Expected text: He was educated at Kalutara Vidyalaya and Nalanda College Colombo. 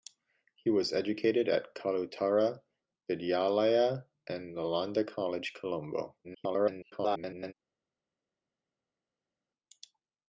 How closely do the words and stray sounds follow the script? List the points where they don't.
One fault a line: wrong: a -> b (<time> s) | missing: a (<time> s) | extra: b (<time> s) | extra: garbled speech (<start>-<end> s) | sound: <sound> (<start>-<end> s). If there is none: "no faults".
extra: garbled speech (6.2-7.5 s)